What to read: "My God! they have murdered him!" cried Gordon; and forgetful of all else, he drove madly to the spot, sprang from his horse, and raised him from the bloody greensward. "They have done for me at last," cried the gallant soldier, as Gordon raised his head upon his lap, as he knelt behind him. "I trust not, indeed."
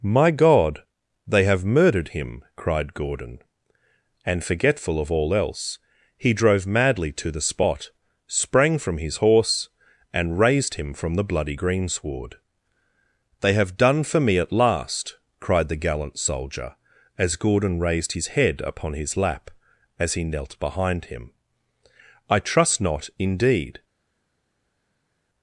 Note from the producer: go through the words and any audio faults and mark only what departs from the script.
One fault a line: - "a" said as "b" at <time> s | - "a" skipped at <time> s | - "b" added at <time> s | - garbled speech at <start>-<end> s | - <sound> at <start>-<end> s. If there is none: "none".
none